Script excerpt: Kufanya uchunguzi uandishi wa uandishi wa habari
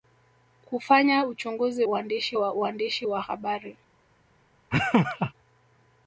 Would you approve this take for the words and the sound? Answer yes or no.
no